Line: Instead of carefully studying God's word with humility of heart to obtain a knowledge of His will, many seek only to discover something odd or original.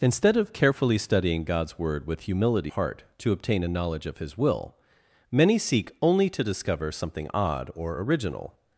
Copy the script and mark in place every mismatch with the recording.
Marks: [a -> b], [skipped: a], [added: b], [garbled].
Instead of carefully studying God's word with humility [skipped: of] heart to obtain a knowledge of His will, many seek only to discover something odd or original.